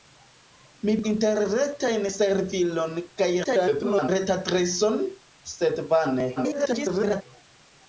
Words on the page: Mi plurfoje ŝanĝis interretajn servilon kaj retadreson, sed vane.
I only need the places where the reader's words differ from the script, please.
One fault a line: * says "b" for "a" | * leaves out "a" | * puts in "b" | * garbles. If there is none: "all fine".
* leaves out "plurfoje ŝanĝis"
* garbles
* garbles